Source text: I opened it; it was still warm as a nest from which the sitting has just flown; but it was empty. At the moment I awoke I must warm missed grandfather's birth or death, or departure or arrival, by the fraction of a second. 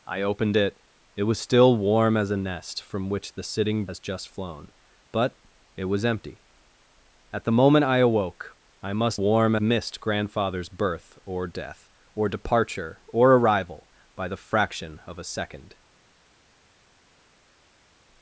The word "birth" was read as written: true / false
true